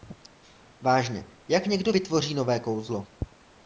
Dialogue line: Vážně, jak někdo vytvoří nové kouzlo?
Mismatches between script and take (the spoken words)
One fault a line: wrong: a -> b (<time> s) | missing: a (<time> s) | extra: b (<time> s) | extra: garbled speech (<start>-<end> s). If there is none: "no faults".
no faults